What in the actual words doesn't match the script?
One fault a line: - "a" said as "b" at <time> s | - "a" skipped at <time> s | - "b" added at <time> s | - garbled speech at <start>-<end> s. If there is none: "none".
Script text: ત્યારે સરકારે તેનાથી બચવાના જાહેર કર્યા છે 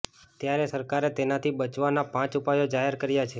- "પાંચ ઉપાયો" added at 2.1 s